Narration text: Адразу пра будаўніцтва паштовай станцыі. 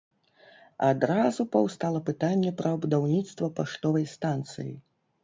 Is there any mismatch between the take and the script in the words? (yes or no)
yes